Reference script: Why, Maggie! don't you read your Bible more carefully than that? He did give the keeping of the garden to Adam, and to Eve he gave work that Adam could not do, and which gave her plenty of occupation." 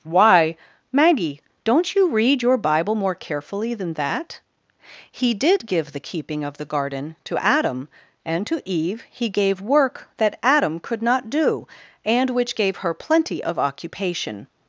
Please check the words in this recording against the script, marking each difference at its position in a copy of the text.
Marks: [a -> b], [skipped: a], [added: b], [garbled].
Why, Maggie! don't you read your Bible more carefully than that? He did give the keeping of the garden to Adam, and to Eve he gave work that Adam could not do, and which gave her plenty of occupation."